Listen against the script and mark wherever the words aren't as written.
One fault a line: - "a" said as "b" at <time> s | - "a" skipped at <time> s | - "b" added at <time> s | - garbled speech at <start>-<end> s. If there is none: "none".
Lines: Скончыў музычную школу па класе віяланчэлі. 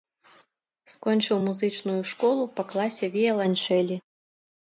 none